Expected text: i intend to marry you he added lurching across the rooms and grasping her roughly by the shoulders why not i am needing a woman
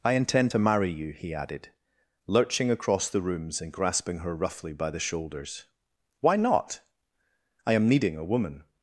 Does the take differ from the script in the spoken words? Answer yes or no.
no